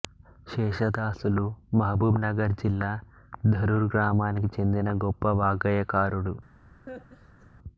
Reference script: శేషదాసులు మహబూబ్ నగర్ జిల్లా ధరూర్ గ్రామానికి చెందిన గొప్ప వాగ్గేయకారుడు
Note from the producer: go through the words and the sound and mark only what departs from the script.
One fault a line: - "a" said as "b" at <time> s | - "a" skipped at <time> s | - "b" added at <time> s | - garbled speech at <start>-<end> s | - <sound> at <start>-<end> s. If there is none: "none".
- laugh at 6.9-7.5 s